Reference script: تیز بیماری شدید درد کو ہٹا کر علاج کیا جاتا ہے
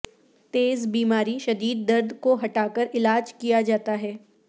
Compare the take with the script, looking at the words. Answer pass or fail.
pass